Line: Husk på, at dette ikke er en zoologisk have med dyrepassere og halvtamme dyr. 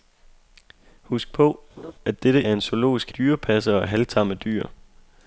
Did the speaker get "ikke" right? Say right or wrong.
wrong